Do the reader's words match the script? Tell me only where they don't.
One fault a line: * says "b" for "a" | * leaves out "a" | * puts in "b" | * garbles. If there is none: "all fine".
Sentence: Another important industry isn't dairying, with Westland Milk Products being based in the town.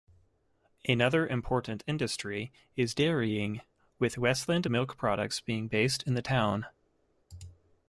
* says "is" for "isn't"